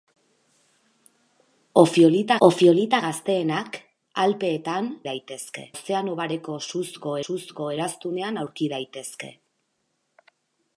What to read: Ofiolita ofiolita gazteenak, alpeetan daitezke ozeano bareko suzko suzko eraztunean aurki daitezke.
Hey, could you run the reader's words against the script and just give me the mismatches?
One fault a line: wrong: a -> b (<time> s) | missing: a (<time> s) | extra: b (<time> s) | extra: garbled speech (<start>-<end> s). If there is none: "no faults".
no faults